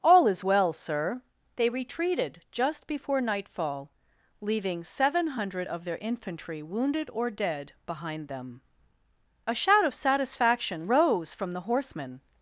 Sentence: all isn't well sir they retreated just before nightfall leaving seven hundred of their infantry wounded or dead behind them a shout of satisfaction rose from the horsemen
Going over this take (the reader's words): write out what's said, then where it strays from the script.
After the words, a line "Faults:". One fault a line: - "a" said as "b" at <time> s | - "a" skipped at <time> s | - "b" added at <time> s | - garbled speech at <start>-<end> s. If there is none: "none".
all is well sir they retreated just before nightfall leaving seven hundred of their infantry wounded or dead behind them a shout of satisfaction rose from the horsemen
Faults:
- "isn't" said as "is" at 0.3 s